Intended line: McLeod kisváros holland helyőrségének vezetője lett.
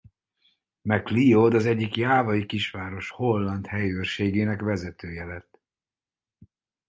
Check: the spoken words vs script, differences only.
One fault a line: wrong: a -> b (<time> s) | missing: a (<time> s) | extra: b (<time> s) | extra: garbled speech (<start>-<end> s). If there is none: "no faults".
extra: az egyik jávai (1.5 s)